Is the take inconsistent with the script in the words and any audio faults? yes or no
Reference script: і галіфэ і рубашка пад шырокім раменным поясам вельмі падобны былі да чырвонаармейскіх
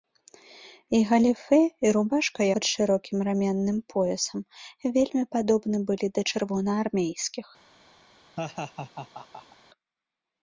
yes